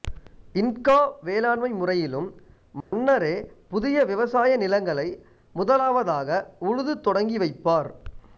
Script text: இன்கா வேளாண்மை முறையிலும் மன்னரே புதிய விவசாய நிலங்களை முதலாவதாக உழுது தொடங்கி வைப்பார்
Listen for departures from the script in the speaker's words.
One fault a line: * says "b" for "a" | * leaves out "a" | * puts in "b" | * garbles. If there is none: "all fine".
all fine